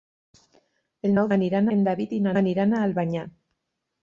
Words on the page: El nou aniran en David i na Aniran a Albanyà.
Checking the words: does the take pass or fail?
pass